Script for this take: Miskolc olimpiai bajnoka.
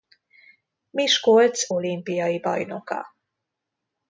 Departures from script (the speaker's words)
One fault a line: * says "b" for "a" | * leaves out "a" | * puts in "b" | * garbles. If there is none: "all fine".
all fine